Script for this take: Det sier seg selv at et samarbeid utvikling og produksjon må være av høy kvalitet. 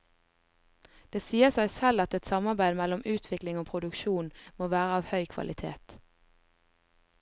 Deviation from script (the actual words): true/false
true